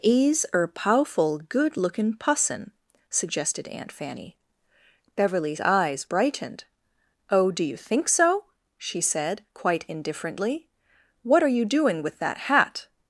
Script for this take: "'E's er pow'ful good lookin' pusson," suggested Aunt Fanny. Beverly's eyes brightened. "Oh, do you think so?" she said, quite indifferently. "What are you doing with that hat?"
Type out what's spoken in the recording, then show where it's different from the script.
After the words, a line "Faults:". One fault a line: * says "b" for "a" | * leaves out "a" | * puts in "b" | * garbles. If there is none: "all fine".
"'E's er pow'ful good lookin' pusson," suggested Aunt Fanny. Beverly's eyes brightened. "Oh, do you think so?" she said, quite indifferently. "What are you doing with that hat?"
Faults:
all fine